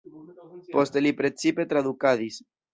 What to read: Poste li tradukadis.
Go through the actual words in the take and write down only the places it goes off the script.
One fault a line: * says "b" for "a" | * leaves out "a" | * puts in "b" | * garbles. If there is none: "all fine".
* puts in "precipe"